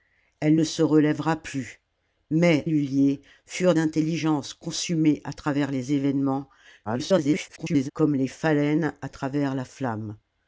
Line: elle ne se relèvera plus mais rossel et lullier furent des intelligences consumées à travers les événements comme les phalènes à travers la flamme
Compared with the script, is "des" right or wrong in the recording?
wrong